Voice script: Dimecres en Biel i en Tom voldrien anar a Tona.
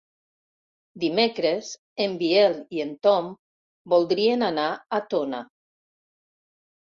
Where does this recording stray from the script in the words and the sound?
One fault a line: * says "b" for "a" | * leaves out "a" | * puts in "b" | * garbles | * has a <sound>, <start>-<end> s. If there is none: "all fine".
all fine